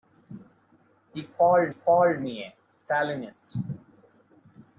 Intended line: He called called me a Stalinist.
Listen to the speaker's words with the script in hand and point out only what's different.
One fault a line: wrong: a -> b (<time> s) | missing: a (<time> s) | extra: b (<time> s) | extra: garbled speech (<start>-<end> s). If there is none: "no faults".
no faults